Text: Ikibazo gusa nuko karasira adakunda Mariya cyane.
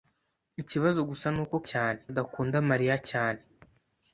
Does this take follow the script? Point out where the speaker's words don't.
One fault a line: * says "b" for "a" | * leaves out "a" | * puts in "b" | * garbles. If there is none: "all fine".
* says "cyane" for "karasira"